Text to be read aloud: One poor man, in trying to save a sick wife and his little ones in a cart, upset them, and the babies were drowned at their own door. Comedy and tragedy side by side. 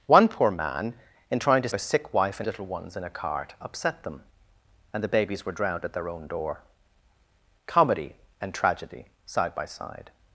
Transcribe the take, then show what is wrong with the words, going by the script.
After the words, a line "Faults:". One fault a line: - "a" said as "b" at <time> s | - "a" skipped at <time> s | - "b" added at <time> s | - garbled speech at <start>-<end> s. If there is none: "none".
One poor man, in trying to a sick wife and little ones in a cart, upset them, and the babies were drowned at their own door. Comedy and tragedy side by side.
Faults:
- "save" skipped at 1.7 s
- "his" skipped at 2.5 s